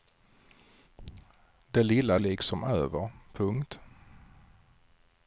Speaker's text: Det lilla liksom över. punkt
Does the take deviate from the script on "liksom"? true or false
false